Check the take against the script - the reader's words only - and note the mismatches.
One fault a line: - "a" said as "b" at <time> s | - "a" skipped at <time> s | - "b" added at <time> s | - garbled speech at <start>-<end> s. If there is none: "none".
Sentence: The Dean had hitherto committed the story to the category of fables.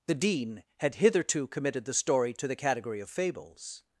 none